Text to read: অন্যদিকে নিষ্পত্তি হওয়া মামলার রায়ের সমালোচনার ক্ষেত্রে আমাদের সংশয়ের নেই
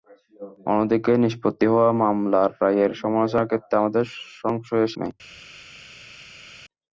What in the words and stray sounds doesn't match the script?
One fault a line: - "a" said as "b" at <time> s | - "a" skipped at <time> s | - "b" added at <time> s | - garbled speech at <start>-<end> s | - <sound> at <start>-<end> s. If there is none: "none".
none